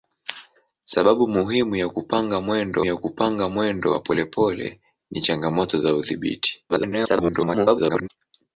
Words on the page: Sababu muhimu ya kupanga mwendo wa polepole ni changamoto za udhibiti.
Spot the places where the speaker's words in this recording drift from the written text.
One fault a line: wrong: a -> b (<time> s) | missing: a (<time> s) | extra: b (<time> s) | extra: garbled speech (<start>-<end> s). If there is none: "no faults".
extra: ya kupanga mwendo (2.8 s)
extra: garbled speech (6.7-8.1 s)